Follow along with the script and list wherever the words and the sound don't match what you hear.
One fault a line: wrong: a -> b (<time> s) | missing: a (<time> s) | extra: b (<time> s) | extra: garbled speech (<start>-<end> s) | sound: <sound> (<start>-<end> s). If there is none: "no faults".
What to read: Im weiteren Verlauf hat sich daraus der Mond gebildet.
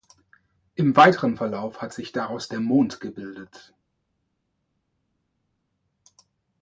no faults